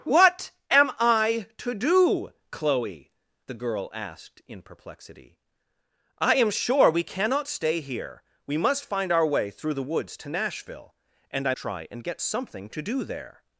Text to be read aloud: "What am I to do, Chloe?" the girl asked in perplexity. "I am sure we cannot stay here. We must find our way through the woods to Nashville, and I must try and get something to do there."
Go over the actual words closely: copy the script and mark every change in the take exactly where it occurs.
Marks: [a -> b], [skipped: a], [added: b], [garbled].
"What am I to do, Chloe?" the girl asked in perplexity. "I am sure we cannot stay here. We must find our way through the woods to Nashville, and I [skipped: must] try and get something to do there."